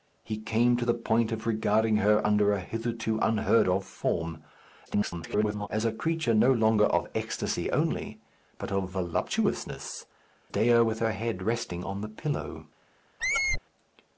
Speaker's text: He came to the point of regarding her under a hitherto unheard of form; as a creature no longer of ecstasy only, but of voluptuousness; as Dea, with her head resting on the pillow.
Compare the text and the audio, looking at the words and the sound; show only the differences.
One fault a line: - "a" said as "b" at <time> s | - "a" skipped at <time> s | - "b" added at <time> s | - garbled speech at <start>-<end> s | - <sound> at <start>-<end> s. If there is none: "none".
- garbled speech at 4.9-5.7 s
- "as" skipped at 10.1 s
- squeak at 13.2-13.6 s